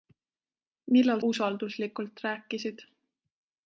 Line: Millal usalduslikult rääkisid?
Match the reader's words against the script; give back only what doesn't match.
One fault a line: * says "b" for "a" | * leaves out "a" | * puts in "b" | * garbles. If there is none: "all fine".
all fine